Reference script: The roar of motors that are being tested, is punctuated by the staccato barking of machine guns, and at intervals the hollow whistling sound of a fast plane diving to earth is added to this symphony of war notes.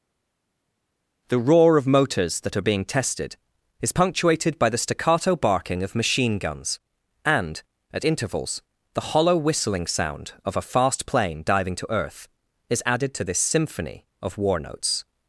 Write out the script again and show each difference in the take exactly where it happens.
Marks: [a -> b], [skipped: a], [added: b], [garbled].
The roar of motors that are being tested, is punctuated by the staccato barking of machine guns, and at intervals the hollow whistling sound of a fast plane diving to earth is added to this symphony of war notes.